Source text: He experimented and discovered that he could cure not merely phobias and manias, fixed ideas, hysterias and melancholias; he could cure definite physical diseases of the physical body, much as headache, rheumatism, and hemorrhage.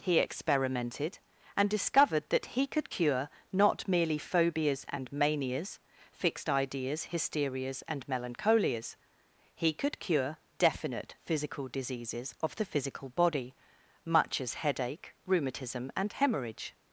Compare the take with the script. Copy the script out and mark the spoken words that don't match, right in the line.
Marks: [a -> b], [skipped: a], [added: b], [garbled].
He experimented and discovered that he could cure not merely phobias and manias, fixed ideas, hysterias and melancholias; he could cure definite physical diseases of the physical body, much as headache, rheumatism, and hemorrhage.